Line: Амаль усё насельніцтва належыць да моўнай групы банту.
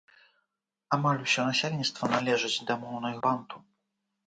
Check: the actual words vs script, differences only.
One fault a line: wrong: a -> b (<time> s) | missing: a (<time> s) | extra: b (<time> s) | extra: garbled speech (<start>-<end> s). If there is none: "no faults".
missing: групы (3.1 s)